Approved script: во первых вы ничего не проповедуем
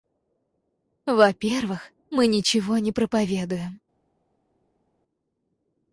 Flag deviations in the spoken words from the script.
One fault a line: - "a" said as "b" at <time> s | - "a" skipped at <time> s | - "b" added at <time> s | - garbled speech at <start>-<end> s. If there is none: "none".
- "вы" said as "мы" at 2.1 s